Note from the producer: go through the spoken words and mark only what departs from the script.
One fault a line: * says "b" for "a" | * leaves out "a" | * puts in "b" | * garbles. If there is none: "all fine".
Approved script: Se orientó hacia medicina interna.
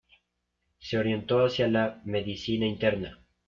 * puts in "la"